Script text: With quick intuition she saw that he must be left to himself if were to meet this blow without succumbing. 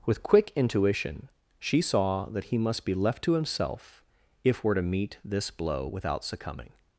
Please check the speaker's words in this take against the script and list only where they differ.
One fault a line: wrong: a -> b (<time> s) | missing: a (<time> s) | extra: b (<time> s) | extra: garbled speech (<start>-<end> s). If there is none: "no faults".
no faults